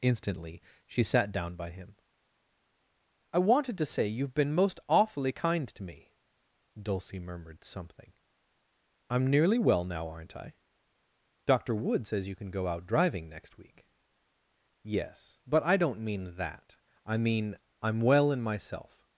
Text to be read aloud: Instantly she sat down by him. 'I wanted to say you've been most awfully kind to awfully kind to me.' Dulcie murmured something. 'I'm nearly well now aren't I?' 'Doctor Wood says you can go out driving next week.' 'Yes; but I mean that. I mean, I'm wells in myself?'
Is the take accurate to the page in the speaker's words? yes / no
no